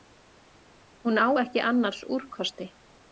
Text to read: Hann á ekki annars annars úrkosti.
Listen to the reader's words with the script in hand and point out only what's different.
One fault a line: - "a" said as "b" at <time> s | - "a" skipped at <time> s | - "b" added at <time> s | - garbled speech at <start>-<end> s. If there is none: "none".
- "Hann" said as "Hún" at 1.0 s
- "annars" skipped at 2.0 s